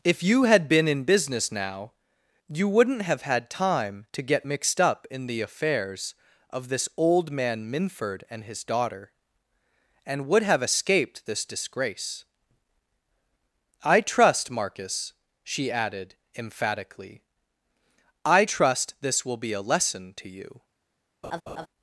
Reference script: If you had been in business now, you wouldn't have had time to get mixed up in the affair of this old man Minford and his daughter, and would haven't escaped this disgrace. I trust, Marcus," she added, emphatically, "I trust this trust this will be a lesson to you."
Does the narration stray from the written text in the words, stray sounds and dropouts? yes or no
yes